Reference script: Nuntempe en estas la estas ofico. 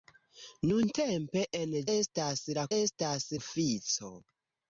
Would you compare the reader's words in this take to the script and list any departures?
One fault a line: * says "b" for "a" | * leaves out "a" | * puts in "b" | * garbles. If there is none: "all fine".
all fine